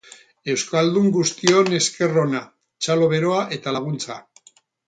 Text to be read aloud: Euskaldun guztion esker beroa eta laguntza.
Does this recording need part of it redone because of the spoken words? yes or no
yes